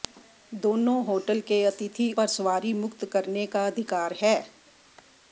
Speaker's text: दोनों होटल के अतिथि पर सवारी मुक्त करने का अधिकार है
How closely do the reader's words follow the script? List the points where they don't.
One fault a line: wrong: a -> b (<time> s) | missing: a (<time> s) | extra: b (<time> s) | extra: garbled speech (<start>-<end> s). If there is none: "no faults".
no faults